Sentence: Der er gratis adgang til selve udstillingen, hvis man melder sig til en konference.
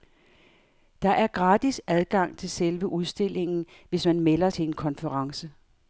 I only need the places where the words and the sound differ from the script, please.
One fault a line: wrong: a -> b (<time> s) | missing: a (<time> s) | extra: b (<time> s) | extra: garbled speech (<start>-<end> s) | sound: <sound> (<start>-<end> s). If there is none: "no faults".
missing: sig (4.5 s)